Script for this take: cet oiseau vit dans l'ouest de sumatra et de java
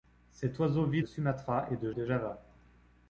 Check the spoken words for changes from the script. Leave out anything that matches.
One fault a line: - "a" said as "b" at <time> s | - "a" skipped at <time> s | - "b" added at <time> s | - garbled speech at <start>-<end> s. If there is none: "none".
- "dans l'ouest" skipped at 1.0 s
- "de" added at 1.9 s